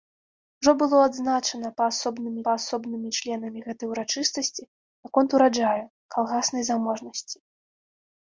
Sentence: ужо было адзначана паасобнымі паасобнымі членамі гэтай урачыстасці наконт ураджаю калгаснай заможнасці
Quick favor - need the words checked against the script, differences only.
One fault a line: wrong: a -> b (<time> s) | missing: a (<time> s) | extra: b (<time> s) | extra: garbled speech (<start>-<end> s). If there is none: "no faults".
no faults